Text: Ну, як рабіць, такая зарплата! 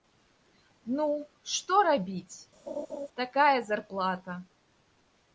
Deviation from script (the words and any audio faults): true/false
true